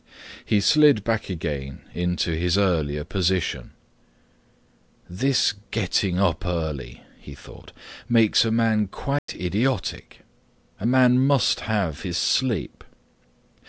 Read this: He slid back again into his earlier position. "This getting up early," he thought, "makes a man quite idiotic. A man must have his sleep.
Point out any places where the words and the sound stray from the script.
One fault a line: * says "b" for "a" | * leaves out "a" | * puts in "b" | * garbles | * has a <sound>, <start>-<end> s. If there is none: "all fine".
* has a dropout, 9.2-9.3 s